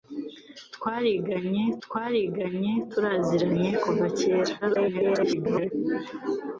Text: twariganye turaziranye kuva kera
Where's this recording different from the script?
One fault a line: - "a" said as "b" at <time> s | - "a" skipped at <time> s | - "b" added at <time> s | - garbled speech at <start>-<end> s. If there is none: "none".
- "twariganye" added at 1.8 s
- garbled speech at 4.6-5.7 s